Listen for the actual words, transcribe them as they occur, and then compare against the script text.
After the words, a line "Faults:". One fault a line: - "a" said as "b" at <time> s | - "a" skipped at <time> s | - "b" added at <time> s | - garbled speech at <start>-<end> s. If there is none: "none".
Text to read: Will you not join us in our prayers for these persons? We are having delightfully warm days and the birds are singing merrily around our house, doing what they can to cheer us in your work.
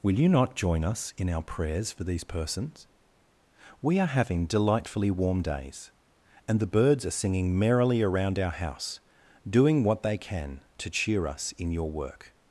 Will you not join us in our prayers for these persons? We are having delightfully warm days and the birds are singing merrily around our house, doing what they can to cheer us in your work.
Faults:
none